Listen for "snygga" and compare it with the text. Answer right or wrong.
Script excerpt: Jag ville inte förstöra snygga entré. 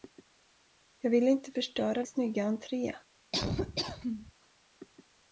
right